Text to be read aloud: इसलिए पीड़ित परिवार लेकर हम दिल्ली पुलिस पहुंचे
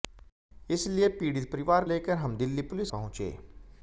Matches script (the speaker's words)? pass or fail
pass